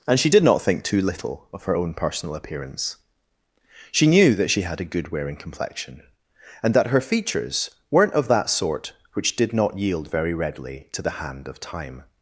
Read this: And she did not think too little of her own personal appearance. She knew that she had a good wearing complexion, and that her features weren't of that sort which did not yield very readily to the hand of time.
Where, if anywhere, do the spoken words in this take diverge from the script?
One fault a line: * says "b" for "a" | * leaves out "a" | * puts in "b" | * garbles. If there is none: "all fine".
all fine